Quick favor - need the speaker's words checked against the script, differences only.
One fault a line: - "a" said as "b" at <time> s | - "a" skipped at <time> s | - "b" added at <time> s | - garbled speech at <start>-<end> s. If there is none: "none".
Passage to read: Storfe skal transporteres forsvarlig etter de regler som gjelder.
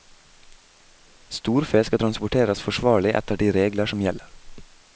none